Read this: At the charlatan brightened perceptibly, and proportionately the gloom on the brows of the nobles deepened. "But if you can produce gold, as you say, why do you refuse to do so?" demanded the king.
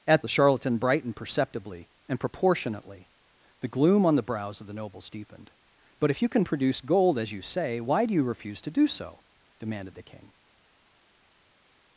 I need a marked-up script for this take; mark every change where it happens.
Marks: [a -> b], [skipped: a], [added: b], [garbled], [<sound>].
At the charlatan brightened perceptibly, and proportionately the gloom on the brows of the nobles deepened. "But if you can produce gold, as you say, why do you refuse to do so?" demanded the king.